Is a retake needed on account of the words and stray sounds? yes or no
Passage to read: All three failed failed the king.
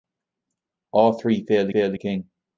no